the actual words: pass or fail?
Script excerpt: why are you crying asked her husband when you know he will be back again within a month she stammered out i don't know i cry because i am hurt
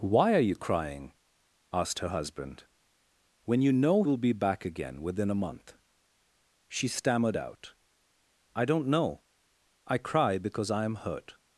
fail